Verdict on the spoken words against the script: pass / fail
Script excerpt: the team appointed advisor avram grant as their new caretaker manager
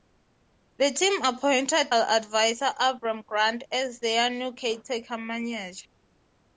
pass